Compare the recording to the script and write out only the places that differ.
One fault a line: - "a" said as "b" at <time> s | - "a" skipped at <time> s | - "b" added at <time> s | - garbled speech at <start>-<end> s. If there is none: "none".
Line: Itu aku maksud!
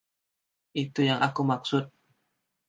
- "yang" added at 1.1 s